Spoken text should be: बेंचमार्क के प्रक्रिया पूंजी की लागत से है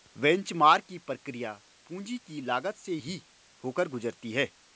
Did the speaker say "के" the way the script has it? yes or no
no